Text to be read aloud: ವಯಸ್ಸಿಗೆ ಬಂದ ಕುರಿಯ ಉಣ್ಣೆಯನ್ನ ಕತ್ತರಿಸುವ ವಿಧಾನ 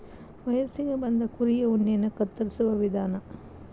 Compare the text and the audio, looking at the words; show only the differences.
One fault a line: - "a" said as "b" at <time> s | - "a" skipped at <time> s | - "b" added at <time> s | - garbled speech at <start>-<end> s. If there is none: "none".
none